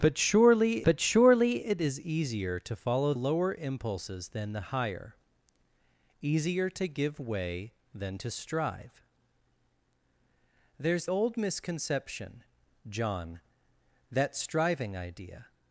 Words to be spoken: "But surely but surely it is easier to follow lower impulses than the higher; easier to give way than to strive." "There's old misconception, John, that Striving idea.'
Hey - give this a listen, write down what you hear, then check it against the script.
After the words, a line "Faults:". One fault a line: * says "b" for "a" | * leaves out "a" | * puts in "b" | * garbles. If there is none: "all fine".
"But surely but surely it is easier to follow lower impulses than the higher; easier to give way than to strive." "There's old misconception, John, that Striving idea.'
Faults:
all fine